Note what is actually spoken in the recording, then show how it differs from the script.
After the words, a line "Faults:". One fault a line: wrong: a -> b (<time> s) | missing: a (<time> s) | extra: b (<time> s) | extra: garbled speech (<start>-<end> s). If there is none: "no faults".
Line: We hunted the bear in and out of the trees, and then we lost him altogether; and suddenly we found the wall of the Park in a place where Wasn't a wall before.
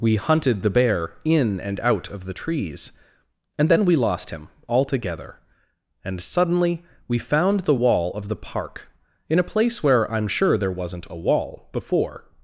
We hunted the bear in and out of the trees, and then we lost him altogether; and suddenly we found the wall of the Park in a place where I'm sure there wasn't a wall before.
Faults:
extra: I'm sure there (10.1 s)